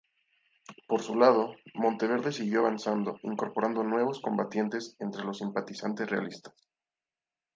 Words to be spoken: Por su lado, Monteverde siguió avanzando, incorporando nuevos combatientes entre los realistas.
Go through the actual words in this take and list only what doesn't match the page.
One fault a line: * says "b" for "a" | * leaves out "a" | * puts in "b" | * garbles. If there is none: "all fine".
* puts in "simpatizantes"